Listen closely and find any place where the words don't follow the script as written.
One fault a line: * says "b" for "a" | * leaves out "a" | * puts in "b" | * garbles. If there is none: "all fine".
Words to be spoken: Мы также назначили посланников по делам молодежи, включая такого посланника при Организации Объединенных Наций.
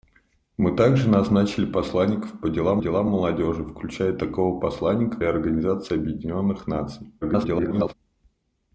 * puts in "делам"
* leaves out "при"
* garbles